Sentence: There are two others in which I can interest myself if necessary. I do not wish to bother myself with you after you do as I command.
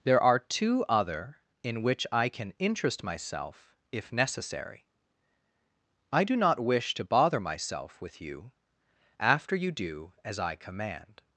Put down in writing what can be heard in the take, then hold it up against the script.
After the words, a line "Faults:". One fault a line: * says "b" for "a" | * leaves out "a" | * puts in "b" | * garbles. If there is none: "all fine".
There are two other in which I can interest myself if necessary. I do not wish to bother myself with you after you do as I command.
Faults:
* says "other" for "others"